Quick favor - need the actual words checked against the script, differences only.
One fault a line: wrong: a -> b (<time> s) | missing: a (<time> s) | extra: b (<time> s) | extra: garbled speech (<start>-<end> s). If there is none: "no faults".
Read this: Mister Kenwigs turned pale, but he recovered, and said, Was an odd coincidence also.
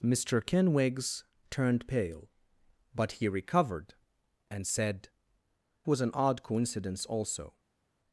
no faults